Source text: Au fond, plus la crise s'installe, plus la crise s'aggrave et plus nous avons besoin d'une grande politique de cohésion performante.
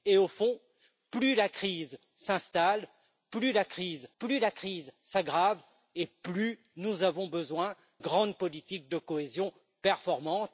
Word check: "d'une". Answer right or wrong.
wrong